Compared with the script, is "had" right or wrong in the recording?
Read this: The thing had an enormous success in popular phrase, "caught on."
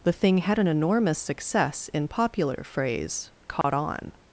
right